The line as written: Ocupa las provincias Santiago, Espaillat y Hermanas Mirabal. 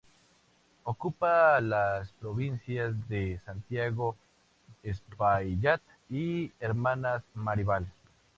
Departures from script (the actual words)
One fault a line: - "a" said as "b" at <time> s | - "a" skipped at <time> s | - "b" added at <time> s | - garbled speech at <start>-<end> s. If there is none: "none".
- "de" added at 3.1 s